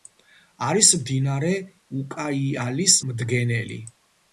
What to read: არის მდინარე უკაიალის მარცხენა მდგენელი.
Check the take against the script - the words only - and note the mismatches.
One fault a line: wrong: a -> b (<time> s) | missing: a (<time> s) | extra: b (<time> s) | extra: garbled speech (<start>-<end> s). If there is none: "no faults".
missing: მარცხენა (3.0 s)